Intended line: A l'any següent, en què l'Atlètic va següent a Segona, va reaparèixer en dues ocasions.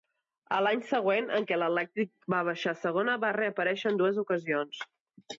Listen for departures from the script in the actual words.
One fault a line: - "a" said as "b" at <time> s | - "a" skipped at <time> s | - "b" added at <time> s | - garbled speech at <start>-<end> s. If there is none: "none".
- "següent" said as "baixar" at 2.5 s